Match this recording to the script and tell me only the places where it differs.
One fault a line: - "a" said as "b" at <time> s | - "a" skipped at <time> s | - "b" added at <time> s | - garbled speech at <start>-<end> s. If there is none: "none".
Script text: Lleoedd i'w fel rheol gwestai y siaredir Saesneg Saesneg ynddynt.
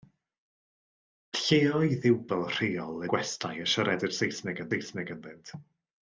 none